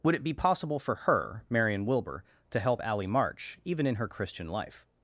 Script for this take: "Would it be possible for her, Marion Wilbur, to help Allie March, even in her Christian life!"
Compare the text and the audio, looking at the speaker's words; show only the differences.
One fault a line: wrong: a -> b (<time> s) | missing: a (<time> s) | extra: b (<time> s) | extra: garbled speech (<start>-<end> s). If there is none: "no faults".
no faults